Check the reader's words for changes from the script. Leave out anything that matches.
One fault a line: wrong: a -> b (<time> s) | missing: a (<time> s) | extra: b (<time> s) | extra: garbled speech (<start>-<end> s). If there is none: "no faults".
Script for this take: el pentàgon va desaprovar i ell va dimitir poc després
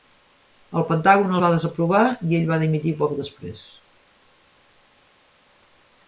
no faults